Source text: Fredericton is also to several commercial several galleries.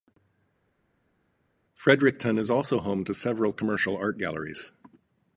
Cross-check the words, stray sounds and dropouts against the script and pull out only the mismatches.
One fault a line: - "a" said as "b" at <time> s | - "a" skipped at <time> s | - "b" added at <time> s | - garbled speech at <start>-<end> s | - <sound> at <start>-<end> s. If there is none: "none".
- "home" added at 2.8 s
- "several" said as "art" at 3.9 s